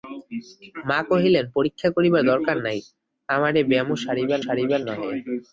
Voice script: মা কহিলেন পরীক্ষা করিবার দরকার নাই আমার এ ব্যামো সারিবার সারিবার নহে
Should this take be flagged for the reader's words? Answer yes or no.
no